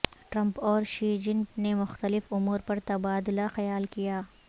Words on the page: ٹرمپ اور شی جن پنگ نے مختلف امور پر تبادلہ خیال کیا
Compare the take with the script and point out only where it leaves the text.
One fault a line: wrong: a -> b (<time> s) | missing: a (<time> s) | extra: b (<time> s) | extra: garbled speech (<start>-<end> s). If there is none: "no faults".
missing: پنگ (1.4 s)